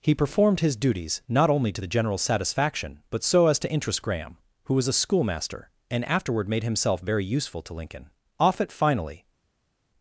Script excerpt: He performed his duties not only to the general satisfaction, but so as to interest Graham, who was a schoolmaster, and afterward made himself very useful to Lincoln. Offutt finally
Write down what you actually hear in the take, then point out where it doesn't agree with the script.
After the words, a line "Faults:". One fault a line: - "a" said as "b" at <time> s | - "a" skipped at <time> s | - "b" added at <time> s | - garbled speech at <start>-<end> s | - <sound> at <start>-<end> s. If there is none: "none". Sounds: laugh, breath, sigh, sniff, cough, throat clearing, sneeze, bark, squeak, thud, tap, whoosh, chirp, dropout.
He performed his duties not only to the general satisfaction, but so as to interest Graham, who was a schoolmaster, and afterward made himself very useful to Lincoln. Offutt finally
Faults:
none